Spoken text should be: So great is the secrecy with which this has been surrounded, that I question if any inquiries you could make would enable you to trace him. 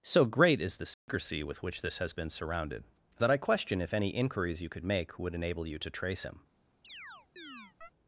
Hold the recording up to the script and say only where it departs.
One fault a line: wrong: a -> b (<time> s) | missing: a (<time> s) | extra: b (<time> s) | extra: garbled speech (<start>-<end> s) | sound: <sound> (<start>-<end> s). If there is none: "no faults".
sound: dropout (0.9-1.1 s)
sound: chirp (6.8-7.9 s)